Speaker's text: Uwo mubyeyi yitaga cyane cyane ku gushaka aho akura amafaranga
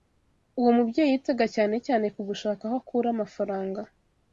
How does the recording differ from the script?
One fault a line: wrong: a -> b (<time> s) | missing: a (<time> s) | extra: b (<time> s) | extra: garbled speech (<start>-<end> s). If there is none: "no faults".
no faults